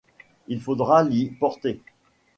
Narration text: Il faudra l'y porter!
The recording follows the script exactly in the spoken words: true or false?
true